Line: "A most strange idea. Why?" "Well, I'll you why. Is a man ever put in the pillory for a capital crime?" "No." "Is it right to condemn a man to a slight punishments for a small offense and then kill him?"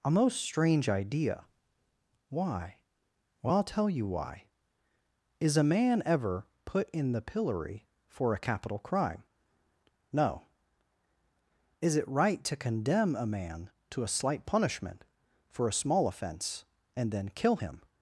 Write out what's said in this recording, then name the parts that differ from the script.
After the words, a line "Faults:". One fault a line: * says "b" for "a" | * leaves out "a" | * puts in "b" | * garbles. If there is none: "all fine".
"A most strange idea. Why?" "Well, I'll tell you why. Is a man ever put in the pillory for a capital crime?" "No." "Is it right to condemn a man to a slight punishment for a small offense and then kill him?"
Faults:
* puts in "tell"
* says "punishment" for "punishments"